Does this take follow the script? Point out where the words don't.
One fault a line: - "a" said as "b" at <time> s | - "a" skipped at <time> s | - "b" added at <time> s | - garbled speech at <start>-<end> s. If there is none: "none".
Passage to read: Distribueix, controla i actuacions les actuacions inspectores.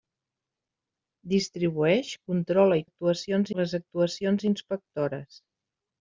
none